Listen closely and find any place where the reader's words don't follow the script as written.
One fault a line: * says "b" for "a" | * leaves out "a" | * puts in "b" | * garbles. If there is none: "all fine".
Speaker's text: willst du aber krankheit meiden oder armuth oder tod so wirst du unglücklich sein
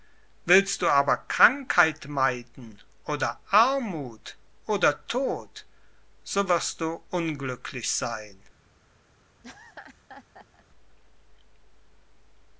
all fine